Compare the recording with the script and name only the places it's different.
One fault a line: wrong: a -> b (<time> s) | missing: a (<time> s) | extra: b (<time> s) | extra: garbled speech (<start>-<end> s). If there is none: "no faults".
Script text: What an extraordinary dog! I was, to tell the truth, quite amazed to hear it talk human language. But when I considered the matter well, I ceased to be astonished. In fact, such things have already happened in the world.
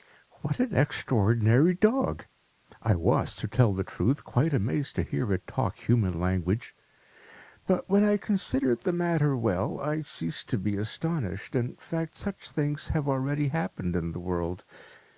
no faults